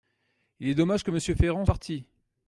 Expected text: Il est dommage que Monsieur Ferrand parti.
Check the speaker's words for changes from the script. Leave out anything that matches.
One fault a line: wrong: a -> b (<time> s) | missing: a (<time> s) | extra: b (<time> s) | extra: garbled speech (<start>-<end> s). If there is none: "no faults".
no faults